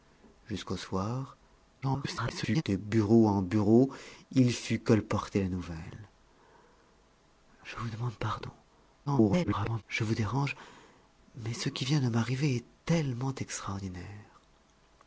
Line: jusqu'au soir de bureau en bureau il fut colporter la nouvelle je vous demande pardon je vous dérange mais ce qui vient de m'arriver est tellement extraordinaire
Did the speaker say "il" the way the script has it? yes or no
yes